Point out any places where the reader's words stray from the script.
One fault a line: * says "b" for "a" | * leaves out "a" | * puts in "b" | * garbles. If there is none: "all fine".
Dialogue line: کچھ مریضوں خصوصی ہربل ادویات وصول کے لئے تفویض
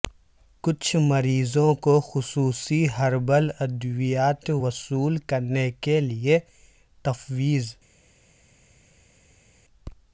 * puts in "کو"
* puts in "کرنے"